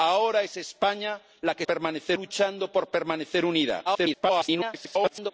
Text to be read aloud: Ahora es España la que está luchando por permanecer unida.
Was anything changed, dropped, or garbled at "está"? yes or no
yes